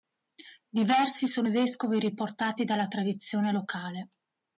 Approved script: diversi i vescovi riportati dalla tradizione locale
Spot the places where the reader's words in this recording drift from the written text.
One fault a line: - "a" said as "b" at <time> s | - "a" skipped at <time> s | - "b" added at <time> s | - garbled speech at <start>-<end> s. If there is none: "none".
- "sono" added at 1.3 s